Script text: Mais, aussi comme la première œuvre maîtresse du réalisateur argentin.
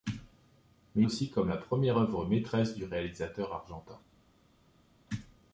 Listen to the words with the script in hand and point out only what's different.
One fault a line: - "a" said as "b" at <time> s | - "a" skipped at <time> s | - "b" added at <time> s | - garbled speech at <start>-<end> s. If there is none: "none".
none